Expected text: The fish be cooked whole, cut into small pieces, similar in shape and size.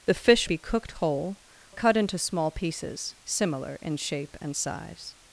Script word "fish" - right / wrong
right